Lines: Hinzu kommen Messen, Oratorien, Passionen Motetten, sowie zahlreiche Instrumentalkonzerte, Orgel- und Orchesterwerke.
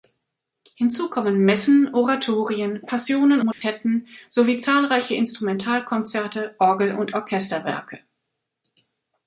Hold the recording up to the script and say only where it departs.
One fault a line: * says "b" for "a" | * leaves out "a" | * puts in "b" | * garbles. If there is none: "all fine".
all fine